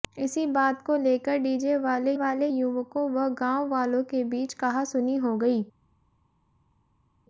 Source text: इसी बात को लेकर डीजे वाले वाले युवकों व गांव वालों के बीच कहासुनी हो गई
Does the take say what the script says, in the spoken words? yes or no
yes